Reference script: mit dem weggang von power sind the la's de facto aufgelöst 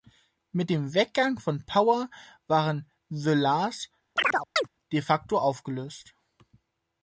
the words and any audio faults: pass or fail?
fail